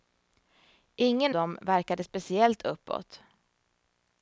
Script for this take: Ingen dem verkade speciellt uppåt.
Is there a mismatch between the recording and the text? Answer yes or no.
no